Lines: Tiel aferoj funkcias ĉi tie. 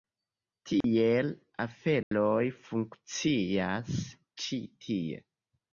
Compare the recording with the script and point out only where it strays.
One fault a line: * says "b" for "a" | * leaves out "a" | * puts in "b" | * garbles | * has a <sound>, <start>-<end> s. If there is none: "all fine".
* has a dropout, 0.8-0.8 s
* has a dropout, 2.0-2.1 s